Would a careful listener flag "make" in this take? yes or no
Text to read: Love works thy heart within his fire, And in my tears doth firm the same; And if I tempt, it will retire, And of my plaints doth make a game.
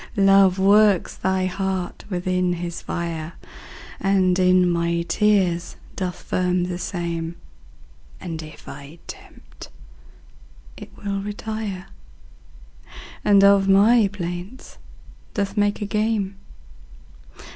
no